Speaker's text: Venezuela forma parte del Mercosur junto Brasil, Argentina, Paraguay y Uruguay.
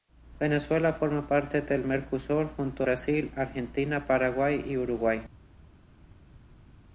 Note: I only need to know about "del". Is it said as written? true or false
true